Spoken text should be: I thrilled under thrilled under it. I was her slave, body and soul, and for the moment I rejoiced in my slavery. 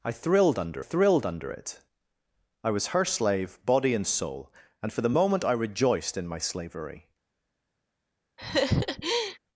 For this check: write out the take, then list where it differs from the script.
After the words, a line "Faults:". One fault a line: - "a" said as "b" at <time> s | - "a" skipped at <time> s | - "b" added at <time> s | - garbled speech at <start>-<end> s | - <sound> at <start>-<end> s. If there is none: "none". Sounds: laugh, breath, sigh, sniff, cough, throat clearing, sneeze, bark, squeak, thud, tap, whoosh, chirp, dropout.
I thrilled under thrilled under it. I was her slave, body and soul, and for the moment I rejoiced in my slavery.
Faults:
- laugh at 8.4-9.4 s